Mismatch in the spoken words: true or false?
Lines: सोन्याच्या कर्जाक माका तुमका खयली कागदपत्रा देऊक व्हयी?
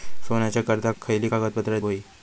true